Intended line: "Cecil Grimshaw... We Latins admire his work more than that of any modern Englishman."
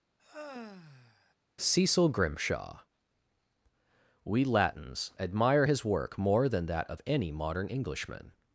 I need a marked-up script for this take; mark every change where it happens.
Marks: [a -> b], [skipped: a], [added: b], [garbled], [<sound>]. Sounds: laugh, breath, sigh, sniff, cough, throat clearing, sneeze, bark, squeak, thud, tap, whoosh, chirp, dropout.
[sigh] "Cecil Grimshaw... We Latins admire his work more than that of any modern Englishman."